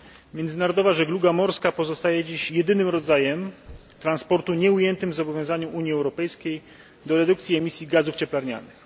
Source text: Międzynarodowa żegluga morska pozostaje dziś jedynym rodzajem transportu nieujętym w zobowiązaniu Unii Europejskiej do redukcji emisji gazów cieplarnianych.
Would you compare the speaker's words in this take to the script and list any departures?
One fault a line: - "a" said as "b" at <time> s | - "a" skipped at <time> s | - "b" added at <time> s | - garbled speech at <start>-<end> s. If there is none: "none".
none